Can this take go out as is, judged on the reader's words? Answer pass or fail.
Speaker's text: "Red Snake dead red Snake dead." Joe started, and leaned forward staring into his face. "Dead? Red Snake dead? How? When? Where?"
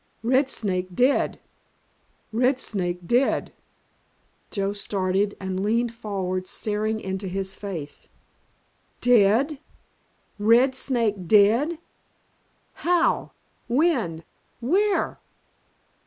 pass